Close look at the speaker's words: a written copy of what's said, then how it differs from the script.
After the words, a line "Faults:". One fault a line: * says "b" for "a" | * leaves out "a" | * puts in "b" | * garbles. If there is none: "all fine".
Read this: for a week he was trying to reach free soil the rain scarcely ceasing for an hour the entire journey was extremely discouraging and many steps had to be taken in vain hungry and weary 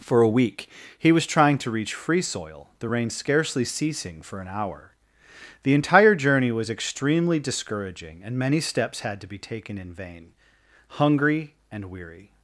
for a week he was trying to reach free soil the rain scarcely ceasing for an hour the entire journey was extremely discouraging and many steps had to be taken in vain hungry and weary
Faults:
all fine